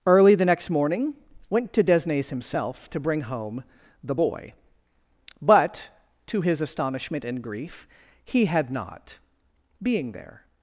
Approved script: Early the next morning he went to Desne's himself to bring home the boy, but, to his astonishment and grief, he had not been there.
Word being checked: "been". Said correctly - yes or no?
no